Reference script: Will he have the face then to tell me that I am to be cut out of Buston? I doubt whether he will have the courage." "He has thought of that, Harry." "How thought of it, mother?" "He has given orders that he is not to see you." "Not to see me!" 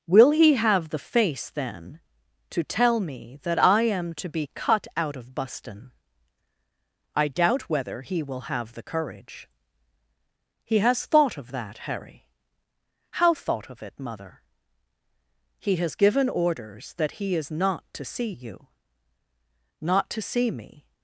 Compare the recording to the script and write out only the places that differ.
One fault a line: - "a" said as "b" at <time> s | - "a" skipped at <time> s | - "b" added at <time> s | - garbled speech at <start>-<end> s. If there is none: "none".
none